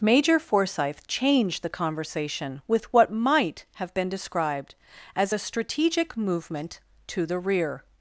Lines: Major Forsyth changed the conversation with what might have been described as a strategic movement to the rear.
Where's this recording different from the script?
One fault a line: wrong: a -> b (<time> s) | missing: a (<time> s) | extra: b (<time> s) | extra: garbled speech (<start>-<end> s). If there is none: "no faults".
no faults